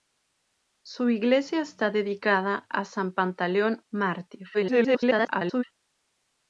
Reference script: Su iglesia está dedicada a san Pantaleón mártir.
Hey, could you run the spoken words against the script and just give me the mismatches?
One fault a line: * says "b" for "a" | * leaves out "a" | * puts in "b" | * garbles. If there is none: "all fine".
* garbles